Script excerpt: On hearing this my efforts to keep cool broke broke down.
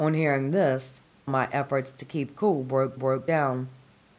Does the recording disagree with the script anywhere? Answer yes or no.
no